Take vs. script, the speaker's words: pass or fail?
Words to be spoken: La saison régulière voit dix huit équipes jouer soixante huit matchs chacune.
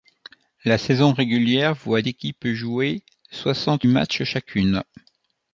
fail